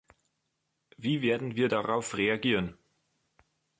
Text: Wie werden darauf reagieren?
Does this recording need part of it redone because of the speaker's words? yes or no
yes